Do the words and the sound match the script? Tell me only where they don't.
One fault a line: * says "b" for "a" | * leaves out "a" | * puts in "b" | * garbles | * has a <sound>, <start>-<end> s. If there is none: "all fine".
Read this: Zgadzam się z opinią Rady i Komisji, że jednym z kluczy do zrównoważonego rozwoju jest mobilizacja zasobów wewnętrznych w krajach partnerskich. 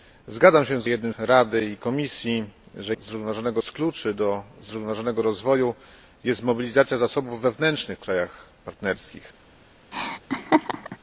* says "jednym" for "opinią"
* says "zrównoważonego" for "jednym"
* has a laugh, 9.9-11.0 s